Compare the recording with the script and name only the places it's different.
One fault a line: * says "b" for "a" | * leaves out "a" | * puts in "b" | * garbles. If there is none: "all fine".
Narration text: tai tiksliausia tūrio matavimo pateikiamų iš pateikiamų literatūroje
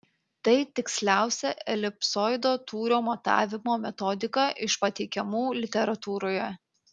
* puts in "elipsoido"
* says "metodika" for "pateikiamų"